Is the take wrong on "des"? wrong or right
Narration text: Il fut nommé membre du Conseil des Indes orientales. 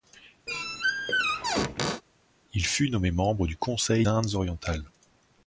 wrong